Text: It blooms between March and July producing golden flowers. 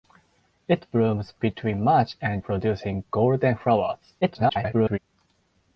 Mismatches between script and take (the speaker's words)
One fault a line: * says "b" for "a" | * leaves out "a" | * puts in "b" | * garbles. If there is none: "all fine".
* leaves out "July"
* garbles